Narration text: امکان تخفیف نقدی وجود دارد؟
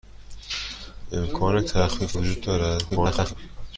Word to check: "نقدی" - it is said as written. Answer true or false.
false